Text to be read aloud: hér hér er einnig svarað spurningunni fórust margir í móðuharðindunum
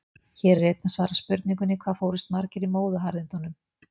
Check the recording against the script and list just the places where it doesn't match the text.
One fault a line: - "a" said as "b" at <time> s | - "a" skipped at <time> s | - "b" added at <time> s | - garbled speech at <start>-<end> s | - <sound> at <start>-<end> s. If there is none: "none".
- "hér" skipped at 0.6 s
- "hvað" added at 1.8 s